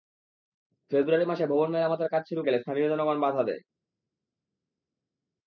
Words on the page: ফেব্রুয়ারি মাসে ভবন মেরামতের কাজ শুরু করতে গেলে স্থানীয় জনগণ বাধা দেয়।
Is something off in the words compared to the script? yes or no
yes